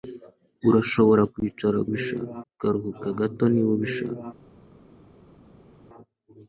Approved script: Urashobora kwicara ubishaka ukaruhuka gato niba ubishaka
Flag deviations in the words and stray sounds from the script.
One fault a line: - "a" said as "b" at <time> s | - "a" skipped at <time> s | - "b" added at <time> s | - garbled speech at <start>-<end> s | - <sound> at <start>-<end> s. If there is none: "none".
none